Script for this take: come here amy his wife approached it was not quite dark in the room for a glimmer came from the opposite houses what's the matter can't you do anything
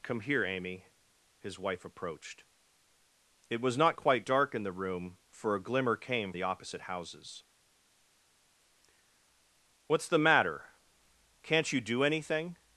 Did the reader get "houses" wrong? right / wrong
right